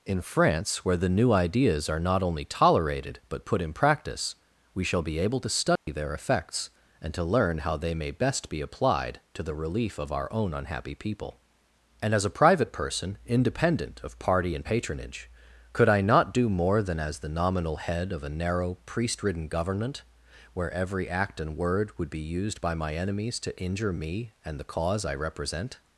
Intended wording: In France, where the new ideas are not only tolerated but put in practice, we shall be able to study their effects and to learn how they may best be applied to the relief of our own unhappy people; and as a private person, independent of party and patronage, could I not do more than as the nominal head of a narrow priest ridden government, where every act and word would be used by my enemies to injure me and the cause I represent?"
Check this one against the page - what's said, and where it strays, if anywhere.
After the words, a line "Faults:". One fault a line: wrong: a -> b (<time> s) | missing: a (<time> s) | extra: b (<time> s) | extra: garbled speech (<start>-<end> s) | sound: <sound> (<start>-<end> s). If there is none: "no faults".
In France, where the new ideas are not only tolerated but put in practice, we shall be able to study their effects and to learn how they may best be applied to the relief of our own unhappy people; and as a private person, independent of party and patronage, could I not do more than as the nominal head of a narrow priest ridden government, where every act and word would be used by my enemies to injure me and the cause I represent?"
Faults:
sound: dropout (5.8-5.9 s)